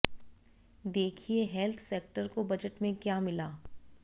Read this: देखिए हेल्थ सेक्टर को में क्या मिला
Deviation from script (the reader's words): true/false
true